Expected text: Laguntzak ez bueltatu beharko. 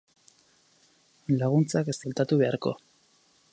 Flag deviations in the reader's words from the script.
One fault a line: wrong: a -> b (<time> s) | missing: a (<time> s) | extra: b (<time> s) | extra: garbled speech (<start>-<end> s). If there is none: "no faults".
no faults